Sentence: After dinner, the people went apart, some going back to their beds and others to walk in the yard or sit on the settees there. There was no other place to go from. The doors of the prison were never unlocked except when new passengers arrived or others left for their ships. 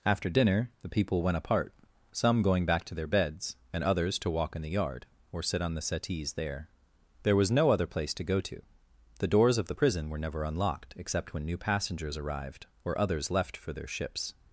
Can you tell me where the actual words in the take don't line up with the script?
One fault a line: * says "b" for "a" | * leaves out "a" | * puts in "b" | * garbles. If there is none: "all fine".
* says "to" for "from"